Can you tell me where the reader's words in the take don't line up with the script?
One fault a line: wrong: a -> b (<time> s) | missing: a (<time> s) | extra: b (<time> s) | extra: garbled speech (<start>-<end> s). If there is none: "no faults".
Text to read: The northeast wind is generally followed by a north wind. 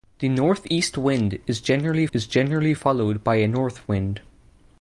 extra: is generally (2.1 s)